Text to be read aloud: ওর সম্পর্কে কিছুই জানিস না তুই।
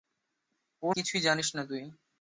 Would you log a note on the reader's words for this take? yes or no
yes